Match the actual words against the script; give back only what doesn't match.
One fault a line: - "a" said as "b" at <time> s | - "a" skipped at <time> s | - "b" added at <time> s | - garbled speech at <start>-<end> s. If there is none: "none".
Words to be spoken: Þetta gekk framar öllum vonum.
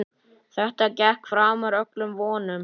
none